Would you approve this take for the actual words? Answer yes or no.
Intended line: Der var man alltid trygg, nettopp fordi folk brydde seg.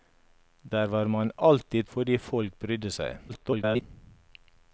no